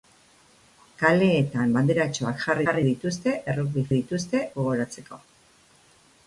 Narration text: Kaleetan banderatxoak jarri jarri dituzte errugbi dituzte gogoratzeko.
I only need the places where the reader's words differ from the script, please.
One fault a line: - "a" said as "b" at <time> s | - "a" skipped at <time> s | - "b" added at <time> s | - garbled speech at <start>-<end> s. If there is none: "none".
none